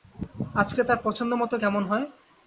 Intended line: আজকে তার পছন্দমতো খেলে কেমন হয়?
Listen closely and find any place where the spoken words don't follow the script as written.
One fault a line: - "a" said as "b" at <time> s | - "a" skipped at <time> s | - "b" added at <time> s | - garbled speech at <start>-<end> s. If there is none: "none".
- "খেলে" skipped at 1.6 s